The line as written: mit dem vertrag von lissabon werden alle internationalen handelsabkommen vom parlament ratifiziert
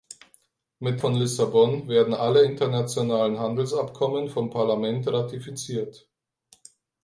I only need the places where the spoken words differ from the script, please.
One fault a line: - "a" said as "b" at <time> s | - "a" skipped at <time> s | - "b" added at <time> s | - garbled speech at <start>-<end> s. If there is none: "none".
- "dem vertrag" skipped at 1.0 s